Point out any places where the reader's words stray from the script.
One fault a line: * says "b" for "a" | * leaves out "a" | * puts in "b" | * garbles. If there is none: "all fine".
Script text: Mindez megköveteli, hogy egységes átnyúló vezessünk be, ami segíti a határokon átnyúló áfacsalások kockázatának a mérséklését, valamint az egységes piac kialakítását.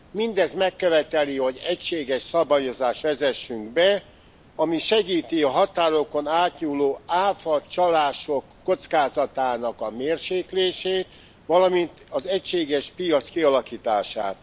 * says "szabályozást" for "átnyúló"